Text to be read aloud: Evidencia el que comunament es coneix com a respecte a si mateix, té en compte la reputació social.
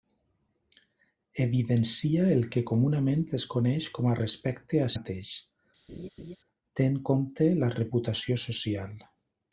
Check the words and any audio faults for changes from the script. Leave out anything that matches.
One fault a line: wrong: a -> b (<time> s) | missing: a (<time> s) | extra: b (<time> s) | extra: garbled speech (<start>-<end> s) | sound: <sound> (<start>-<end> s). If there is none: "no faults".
missing: si (4.9 s)
sound: laugh (5.9-6.4 s)